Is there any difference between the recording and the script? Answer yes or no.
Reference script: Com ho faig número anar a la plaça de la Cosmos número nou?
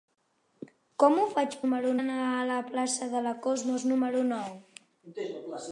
no